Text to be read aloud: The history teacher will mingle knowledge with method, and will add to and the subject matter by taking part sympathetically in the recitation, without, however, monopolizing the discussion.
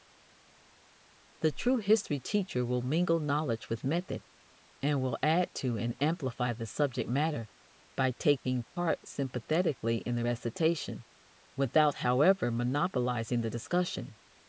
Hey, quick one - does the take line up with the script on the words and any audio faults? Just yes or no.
no